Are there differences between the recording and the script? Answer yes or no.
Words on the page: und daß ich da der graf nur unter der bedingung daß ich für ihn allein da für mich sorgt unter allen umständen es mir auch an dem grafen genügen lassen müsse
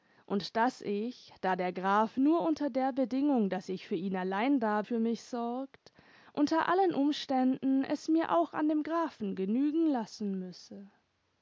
no